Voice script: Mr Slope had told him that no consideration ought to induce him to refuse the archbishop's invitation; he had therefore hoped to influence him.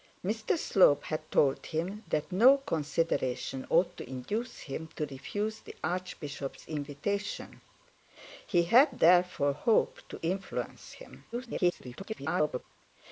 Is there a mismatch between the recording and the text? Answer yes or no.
yes